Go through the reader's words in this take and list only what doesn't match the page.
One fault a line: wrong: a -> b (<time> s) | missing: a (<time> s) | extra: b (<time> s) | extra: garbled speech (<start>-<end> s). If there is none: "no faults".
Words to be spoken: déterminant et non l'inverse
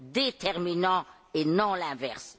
no faults